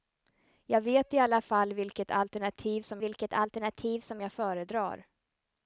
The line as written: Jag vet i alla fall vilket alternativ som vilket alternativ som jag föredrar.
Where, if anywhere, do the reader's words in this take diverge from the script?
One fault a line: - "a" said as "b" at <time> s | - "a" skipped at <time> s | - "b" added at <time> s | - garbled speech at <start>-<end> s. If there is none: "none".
none